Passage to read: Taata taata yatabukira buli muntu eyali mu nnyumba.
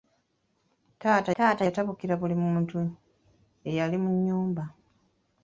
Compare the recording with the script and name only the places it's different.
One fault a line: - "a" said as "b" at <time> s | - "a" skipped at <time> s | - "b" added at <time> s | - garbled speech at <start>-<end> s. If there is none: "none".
none